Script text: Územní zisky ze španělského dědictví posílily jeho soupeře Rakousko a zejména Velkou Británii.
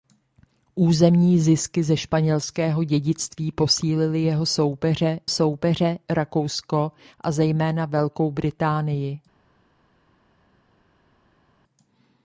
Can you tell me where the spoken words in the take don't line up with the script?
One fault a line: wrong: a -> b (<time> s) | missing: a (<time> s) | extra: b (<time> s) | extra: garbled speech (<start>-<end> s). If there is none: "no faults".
extra: soupeře (5.3 s)